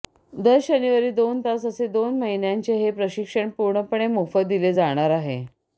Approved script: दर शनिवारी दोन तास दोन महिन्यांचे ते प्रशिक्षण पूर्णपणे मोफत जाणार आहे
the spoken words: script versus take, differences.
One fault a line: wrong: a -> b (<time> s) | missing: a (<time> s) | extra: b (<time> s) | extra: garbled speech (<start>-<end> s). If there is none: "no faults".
extra: असे (1.7 s)
wrong: ते -> हे (2.8 s)
extra: दिले (4.5 s)